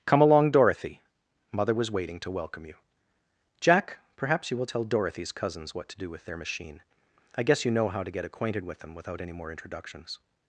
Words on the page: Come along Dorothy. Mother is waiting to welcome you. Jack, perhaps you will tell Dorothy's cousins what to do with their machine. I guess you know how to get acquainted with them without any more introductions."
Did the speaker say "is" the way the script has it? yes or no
no